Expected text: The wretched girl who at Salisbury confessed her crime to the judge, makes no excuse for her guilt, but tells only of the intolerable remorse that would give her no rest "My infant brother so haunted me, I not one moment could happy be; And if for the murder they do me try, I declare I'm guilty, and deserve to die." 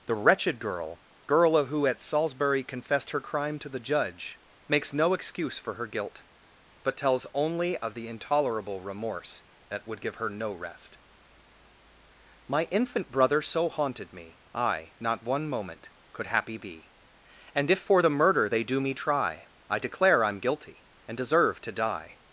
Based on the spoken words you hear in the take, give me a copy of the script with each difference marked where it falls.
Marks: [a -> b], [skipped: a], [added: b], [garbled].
The wretched girl [added: girl] who at Salisbury confessed her crime to the judge, makes no excuse for her guilt, but tells only of the intolerable remorse that would give her no rest "My infant brother so haunted me, I not one moment could happy be; And if for the murder they do me try, I declare I'm guilty, and deserve to die."